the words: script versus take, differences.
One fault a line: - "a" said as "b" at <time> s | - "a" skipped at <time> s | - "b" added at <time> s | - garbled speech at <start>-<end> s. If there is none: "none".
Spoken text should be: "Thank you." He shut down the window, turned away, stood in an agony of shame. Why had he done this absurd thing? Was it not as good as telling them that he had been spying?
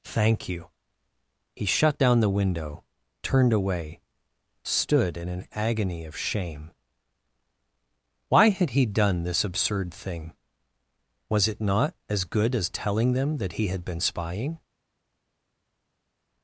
none